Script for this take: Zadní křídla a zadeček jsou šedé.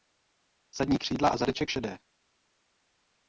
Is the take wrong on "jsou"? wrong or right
wrong